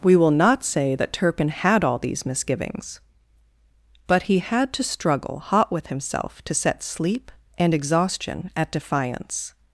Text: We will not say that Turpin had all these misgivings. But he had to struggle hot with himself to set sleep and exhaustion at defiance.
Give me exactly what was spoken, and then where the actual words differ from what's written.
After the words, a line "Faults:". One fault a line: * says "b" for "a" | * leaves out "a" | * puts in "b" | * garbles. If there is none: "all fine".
We will not say that Turpin had all these misgivings. But he had to struggle hot with himself to set sleep and exhaustion at defiance.
Faults:
all fine